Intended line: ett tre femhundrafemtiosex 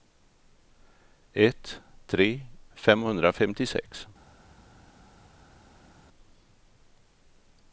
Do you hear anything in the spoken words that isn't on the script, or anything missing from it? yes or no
no